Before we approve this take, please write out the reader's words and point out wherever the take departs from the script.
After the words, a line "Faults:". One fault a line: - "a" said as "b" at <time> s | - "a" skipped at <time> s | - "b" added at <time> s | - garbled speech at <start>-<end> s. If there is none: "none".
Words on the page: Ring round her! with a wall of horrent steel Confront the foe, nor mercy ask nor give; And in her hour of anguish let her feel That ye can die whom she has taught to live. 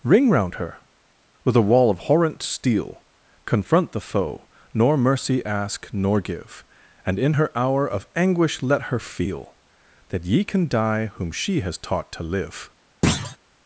Ring round her! with a wall of horrent steel Confront the foe, nor mercy ask nor give; And in her hour of anguish let her feel That ye can die whom she has taught to live.
Faults:
none